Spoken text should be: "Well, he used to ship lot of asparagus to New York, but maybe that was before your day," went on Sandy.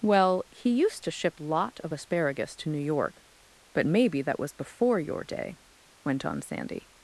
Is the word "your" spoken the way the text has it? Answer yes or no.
yes